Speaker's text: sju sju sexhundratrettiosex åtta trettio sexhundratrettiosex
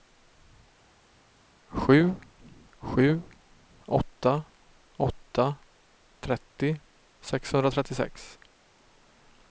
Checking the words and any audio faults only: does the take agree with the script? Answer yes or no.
no